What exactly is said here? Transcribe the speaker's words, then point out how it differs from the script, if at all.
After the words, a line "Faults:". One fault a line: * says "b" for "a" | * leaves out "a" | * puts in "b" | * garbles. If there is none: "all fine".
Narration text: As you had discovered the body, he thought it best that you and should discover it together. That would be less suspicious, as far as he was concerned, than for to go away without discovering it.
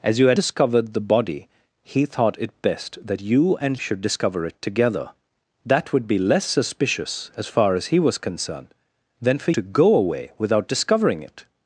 As you had discovered the body, he thought it best that you and should discover it together. That would be less suspicious, as far as he was concerned, than for to go away without discovering it.
Faults:
all fine